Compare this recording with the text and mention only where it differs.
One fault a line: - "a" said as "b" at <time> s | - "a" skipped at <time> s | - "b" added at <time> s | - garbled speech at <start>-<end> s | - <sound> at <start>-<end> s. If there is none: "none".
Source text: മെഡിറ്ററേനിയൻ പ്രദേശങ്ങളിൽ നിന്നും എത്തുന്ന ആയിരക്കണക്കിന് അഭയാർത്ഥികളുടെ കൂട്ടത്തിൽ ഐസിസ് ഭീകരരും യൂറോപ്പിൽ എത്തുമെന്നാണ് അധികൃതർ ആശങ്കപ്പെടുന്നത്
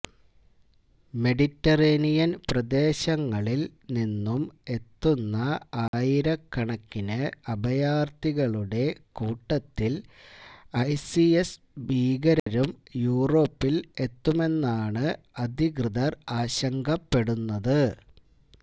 - dropout at 5.9-5.9 s
- dropout at 12.4-12.5 s